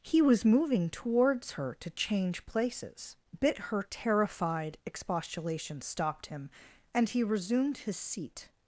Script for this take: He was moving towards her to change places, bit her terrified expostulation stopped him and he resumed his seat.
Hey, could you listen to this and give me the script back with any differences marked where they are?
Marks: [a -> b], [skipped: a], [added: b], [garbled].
He was moving towards her to change places, bit her terrified expostulation stopped him and he resumed his seat.